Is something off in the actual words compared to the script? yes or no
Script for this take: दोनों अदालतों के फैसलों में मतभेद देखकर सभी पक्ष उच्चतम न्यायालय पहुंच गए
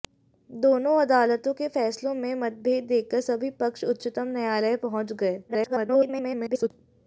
yes